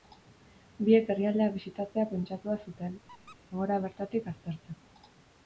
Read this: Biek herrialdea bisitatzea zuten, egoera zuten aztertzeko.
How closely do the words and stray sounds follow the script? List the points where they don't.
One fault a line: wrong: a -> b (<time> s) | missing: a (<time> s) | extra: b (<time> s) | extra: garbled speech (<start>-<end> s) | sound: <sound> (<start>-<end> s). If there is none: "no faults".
extra: pentsatua (2.1 s)
sound: squeak (3.1-3.4 s)
wrong: zuten -> bertatik (3.9 s)